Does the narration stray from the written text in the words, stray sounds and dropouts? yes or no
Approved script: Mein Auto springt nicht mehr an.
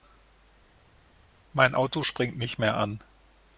no